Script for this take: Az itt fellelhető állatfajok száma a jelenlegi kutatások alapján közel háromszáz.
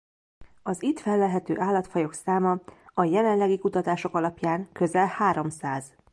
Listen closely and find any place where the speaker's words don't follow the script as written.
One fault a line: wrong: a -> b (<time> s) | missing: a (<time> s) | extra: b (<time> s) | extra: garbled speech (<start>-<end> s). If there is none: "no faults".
no faults